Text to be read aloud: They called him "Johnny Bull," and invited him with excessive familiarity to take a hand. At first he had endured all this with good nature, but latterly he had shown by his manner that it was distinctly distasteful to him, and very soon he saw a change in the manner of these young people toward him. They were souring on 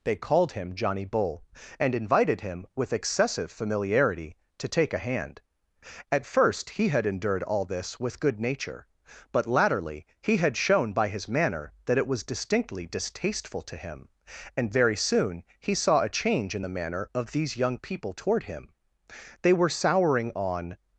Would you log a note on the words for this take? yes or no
no